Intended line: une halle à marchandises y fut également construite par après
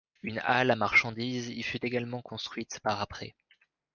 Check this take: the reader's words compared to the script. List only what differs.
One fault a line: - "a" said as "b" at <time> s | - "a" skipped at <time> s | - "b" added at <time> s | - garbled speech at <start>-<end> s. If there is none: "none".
none